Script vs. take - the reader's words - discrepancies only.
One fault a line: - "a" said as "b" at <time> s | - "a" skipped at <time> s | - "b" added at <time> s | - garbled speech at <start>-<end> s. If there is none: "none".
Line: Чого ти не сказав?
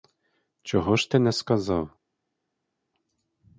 - "ж" added at 0.9 s